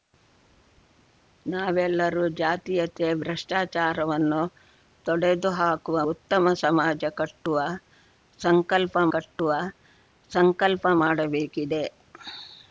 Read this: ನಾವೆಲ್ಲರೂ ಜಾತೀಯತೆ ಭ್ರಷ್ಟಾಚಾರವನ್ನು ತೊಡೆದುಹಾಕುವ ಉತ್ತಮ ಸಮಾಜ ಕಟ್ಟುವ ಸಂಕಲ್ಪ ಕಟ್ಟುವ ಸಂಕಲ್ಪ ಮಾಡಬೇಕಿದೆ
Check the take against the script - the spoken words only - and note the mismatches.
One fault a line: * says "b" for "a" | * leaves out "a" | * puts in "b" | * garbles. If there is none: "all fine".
all fine